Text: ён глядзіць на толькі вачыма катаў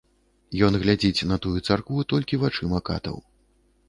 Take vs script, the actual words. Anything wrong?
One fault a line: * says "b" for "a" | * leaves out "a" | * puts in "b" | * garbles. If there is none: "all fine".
* puts in "тую царкву"